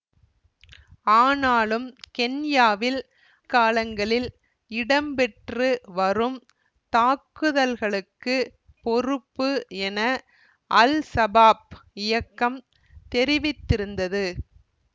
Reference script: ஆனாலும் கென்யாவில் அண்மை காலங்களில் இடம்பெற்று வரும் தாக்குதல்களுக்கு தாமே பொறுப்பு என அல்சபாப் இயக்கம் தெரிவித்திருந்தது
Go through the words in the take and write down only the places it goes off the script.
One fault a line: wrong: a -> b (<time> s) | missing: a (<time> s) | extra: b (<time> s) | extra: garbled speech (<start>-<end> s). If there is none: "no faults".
missing: அண்மை (3.0 s)
missing: தாமே (8.4 s)